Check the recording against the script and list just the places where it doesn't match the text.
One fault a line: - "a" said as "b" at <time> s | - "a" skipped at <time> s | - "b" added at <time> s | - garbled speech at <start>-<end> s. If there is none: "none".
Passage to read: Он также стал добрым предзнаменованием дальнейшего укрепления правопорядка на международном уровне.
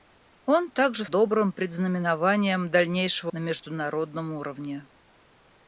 - "стал" skipped at 1.1 s
- "укрепления правопорядка" skipped at 3.3 s